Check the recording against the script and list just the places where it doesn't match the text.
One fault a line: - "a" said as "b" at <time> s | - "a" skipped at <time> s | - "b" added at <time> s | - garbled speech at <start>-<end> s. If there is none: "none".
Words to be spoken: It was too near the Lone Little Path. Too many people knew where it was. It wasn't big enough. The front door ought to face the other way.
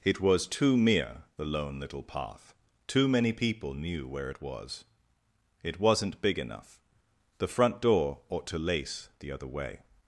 - "near" said as "mere" at 0.8 s
- "face" said as "lace" at 8.6 s